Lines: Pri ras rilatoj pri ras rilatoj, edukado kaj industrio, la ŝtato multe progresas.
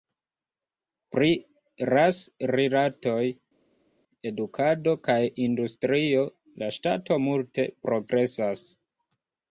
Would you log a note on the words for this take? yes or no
yes